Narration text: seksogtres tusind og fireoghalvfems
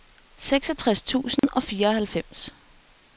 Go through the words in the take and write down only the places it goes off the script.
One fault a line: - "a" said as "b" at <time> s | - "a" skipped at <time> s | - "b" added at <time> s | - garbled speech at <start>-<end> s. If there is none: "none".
none